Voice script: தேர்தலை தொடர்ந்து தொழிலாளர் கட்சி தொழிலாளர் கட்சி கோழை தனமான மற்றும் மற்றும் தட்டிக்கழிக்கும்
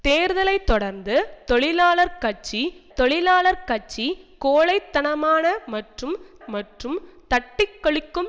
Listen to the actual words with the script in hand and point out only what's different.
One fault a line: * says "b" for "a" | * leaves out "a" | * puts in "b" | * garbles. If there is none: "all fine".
all fine